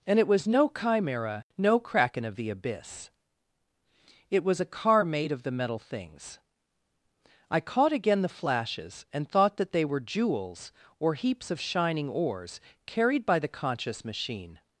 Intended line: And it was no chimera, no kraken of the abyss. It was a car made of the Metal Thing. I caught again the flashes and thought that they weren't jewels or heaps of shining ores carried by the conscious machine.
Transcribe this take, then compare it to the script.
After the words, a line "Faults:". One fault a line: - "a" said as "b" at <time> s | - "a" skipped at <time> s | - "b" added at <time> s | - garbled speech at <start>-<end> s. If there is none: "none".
And it was no chimera, no kraken of the abyss. It was a car made of the Metal Things. I caught again the flashes and thought that they were jewels or heaps of shining ores carried by the conscious machine.
Faults:
- "Thing" said as "Things" at 5.8 s
- "weren't" said as "were" at 9.8 s